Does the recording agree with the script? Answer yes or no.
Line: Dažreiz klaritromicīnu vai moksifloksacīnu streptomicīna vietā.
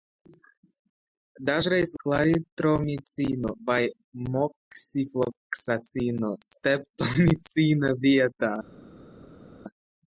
yes